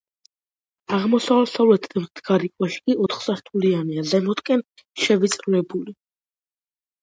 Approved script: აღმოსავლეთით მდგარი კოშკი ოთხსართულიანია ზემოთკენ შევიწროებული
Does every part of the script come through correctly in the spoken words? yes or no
yes